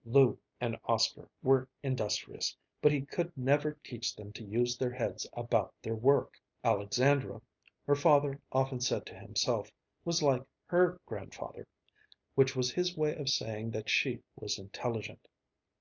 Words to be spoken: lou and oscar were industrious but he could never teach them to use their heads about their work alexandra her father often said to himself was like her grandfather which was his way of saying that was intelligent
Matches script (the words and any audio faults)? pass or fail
fail